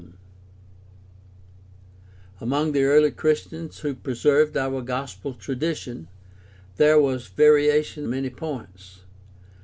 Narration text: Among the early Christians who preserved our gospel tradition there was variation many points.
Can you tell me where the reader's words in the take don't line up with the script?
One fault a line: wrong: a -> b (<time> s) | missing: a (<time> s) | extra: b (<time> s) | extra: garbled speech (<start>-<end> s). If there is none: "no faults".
no faults